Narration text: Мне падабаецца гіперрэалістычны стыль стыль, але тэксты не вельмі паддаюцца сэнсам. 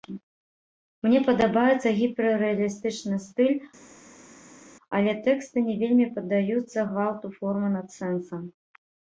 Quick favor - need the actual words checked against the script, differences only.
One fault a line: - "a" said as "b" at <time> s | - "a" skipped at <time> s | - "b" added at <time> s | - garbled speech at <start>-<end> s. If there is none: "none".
- "стыль" skipped at 3.5 s
- "гвалту формы над" added at 6.9 s